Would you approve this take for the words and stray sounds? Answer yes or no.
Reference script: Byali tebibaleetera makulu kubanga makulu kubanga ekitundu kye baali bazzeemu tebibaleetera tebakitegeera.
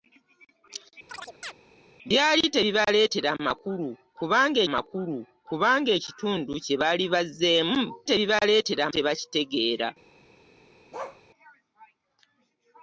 no